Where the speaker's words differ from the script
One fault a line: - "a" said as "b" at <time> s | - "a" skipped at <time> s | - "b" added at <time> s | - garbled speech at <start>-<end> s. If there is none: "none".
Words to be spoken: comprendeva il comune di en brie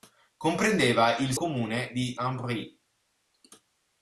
none